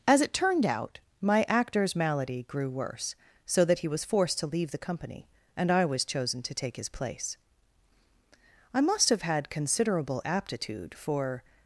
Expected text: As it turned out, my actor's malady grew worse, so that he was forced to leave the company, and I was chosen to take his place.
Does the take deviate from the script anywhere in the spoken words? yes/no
yes